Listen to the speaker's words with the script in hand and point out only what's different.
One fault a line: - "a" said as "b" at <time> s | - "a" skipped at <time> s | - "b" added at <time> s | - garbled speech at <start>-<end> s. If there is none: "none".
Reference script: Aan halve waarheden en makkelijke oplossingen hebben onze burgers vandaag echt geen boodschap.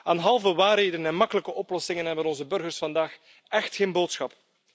none